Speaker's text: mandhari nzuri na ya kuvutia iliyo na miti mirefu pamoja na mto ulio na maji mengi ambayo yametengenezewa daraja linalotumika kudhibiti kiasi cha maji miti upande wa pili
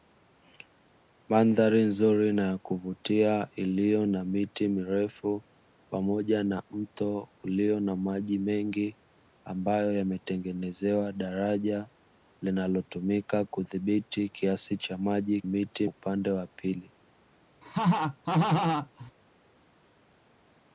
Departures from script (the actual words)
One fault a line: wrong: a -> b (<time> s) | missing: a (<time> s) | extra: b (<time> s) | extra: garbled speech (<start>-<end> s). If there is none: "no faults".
no faults